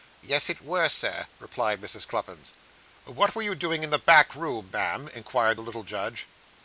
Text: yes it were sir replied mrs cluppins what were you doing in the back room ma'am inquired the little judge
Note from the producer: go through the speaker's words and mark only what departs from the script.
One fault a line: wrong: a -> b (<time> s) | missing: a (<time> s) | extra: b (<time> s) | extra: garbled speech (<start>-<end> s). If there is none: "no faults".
no faults